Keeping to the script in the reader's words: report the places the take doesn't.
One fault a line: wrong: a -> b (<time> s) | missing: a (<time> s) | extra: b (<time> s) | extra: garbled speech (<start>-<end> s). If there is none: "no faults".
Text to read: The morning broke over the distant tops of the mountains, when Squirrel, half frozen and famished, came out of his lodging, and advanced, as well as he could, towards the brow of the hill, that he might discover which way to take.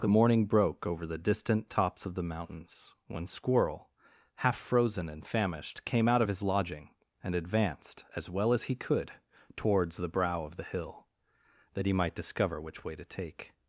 no faults